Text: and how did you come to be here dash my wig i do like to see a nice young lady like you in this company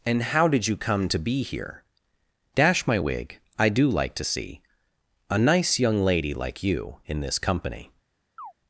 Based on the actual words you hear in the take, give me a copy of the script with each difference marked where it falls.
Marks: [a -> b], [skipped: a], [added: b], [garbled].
and how did you come to be here dash my wig i do like to see a nice young lady like you in this company